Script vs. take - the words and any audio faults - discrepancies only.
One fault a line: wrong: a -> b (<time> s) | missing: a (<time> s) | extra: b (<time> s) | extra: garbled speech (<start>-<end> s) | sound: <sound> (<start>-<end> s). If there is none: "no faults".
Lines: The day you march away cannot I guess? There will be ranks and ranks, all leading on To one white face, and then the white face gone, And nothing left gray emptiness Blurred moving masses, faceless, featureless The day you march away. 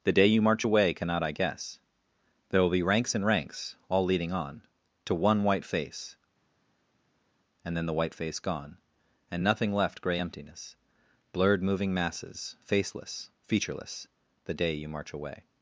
no faults